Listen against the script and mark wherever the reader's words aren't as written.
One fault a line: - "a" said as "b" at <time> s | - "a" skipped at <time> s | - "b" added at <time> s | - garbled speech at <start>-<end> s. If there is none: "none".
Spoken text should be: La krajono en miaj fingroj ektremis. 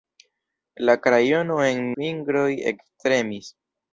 - "miaj" skipped at 1.9 s